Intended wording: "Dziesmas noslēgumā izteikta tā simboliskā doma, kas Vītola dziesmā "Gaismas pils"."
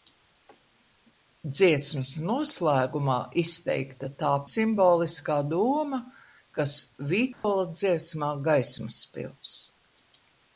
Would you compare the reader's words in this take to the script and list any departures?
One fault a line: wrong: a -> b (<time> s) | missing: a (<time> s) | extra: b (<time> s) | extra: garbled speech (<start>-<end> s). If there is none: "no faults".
no faults